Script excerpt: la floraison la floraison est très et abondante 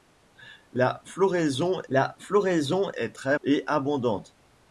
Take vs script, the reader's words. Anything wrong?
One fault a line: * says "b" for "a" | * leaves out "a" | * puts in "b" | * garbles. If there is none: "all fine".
all fine